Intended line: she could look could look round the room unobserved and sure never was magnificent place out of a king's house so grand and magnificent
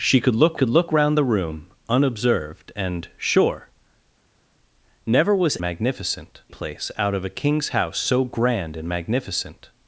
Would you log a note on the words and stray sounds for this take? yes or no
no